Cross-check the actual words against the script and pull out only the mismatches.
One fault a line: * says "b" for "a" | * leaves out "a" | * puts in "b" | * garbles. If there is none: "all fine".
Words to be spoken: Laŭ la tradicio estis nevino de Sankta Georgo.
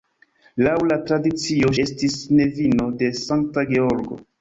all fine